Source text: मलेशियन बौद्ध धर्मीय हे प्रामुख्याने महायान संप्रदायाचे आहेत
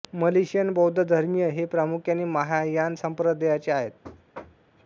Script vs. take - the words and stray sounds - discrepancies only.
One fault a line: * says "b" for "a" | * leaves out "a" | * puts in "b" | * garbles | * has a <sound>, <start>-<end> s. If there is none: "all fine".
* has a thud, 4.0-4.7 s